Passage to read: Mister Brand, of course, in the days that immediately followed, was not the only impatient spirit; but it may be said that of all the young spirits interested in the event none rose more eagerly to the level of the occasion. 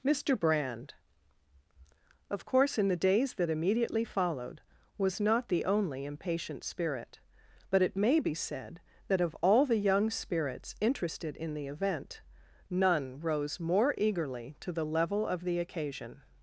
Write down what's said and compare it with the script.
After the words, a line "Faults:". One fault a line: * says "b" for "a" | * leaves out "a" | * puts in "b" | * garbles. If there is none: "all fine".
Mister Brand, of course, in the days that immediately followed, was not the only impatient spirit; but it may be said that of all the young spirits interested in the event none rose more eagerly to the level of the occasion.
Faults:
all fine